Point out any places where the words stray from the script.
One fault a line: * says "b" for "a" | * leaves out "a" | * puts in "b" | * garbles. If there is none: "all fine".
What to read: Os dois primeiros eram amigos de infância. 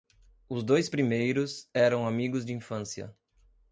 all fine